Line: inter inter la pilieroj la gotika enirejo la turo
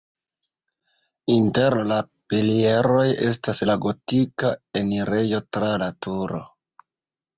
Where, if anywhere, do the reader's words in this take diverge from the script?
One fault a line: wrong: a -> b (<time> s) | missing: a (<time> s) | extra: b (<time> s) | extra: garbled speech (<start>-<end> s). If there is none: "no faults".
missing: inter (1.8 s)
extra: estas (3.3 s)
extra: tra (5.6 s)